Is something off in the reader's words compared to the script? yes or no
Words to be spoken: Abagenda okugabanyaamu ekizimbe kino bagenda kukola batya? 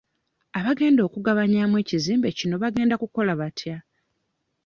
no